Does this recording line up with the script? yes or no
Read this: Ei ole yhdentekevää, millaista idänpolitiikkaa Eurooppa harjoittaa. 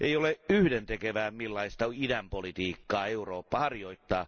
yes